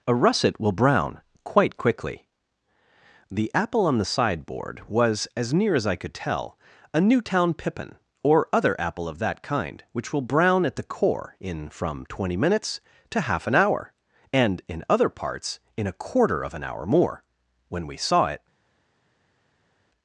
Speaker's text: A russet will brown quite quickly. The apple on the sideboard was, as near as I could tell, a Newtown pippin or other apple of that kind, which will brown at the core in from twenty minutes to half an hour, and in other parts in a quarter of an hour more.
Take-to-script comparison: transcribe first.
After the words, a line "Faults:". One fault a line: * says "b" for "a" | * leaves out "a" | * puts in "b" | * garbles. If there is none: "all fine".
A russet will brown quite quickly. The apple on the sideboard was, as near as I could tell, a Newtown pippin or other apple of that kind, which will brown at the core in from twenty minutes to half an hour, and in other parts in a quarter of an hour more. When we saw it
Faults:
* puts in "When we saw it"